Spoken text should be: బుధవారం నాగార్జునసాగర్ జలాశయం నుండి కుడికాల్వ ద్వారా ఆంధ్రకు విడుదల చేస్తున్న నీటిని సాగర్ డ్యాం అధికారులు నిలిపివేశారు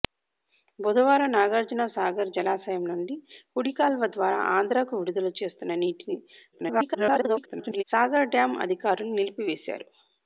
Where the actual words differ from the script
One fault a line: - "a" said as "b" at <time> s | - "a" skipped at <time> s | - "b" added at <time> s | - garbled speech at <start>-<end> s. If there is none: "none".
- garbled speech at 6.5-7.8 s